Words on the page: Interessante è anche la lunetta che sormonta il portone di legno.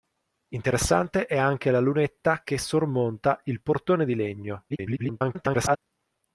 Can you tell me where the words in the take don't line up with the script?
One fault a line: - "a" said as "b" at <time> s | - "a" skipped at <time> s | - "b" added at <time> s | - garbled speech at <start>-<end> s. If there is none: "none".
- garbled speech at 4.7-5.8 s